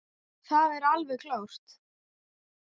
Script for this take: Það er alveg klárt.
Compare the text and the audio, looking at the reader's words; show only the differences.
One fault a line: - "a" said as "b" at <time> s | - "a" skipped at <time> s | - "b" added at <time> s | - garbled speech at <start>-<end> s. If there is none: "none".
none